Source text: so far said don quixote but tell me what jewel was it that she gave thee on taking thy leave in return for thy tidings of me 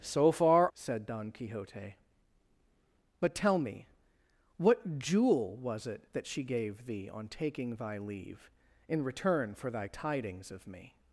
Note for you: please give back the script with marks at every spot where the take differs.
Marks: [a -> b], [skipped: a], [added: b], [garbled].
so far said don quixote but tell me what jewel was it that she gave thee on taking thy leave in return for thy tidings of me